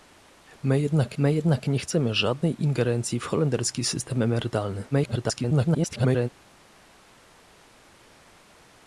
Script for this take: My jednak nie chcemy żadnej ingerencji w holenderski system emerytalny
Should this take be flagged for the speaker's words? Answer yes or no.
yes